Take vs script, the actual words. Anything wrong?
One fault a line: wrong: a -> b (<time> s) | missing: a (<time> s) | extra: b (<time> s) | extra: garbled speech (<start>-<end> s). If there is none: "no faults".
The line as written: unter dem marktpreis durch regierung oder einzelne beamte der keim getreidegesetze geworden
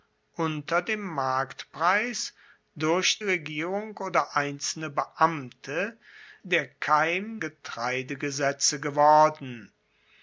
no faults